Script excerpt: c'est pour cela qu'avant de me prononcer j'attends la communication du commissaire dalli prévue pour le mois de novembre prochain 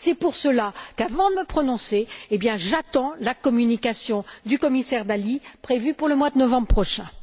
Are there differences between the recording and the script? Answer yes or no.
no